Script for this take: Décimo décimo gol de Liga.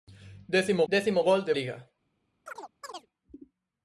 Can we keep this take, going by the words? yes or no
yes